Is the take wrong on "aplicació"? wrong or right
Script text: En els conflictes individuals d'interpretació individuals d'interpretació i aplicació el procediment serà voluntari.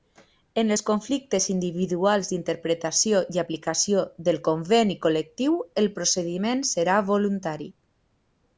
wrong